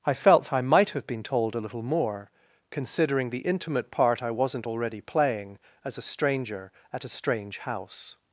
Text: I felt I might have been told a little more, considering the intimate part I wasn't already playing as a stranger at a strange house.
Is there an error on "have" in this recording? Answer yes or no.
no